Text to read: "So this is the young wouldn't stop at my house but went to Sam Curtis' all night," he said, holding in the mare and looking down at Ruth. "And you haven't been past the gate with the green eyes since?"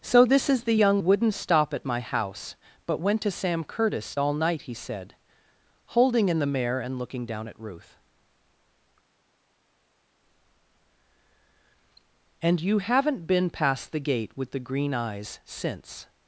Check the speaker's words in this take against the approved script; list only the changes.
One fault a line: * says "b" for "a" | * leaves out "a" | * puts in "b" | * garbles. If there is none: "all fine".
all fine